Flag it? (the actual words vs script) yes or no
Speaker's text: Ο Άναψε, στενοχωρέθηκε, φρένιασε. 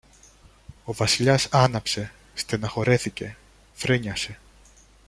yes